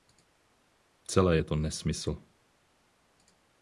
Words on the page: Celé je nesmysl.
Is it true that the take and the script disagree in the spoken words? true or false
true